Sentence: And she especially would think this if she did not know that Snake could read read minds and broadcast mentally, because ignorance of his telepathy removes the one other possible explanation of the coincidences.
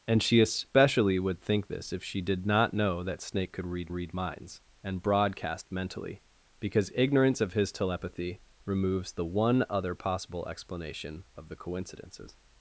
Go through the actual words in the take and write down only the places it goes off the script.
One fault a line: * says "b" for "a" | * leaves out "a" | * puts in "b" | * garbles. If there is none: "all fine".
all fine